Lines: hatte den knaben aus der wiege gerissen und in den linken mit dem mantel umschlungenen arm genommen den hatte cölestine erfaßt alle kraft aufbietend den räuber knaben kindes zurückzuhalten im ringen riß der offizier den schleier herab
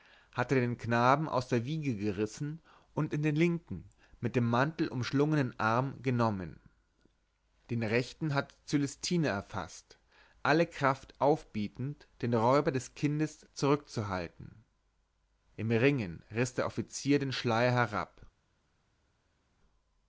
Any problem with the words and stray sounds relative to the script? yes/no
yes